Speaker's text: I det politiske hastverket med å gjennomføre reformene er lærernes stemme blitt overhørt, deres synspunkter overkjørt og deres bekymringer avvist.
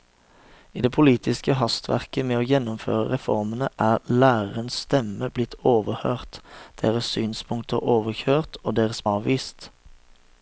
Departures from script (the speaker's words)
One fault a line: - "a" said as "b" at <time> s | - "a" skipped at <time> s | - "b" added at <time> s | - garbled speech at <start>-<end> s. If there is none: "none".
- "bekymringer" skipped at 9.0 s